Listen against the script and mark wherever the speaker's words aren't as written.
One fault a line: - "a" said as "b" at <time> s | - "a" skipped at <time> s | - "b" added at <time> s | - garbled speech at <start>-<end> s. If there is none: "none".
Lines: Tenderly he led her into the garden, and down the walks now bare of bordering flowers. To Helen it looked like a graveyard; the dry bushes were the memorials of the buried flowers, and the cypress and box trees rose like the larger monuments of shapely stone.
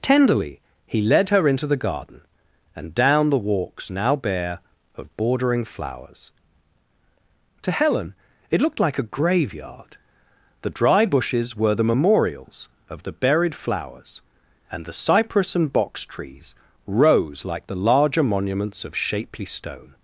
none